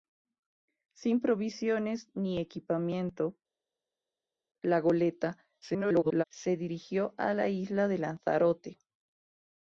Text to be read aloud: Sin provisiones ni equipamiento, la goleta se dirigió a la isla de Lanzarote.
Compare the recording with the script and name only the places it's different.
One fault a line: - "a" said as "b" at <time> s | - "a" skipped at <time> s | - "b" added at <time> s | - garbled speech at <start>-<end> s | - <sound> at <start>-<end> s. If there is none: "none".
- garbled speech at 5.6-6.2 s